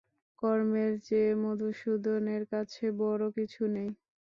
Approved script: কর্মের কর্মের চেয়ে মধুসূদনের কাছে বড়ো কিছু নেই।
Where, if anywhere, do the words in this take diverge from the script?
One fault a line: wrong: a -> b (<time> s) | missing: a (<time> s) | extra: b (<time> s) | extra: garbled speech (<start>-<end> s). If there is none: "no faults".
missing: কর্মের (0.9 s)